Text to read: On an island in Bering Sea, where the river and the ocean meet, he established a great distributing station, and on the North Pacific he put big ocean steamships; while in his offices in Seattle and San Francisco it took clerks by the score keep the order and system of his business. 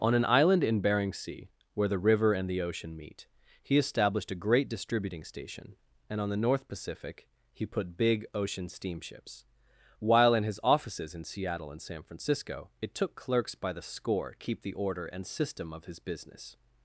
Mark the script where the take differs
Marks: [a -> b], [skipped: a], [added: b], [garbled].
On an island in Bering Sea, where the river and the ocean meet, he established a great distributing station, and on the North Pacific he put big ocean steamships; while in his offices in Seattle and San Francisco it took clerks by the score keep the order and system of his business.